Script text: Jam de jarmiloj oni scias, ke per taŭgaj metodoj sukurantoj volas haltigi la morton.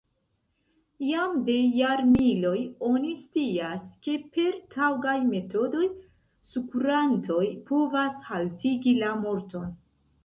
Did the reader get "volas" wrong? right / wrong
wrong